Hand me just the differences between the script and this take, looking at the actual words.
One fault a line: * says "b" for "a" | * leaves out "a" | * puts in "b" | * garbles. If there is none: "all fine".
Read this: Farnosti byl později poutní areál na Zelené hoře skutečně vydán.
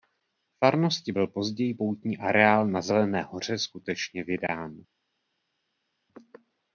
all fine